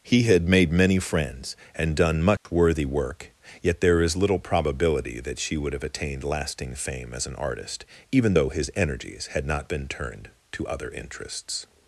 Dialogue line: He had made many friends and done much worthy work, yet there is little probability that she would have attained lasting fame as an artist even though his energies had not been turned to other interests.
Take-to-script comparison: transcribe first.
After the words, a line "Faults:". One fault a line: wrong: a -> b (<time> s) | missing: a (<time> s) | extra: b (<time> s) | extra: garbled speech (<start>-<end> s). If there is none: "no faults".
He had made many friends and done much worthy work, yet there is little probability that she would have attained lasting fame as an artist even though his energies had not been turned to other interests.
Faults:
no faults